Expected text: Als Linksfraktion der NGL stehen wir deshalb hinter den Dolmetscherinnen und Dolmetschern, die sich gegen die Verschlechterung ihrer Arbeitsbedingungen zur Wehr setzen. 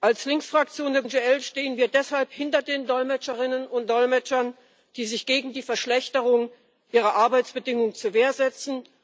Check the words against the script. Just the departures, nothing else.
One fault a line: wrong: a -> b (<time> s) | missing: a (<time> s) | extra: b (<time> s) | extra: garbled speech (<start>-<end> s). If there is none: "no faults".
no faults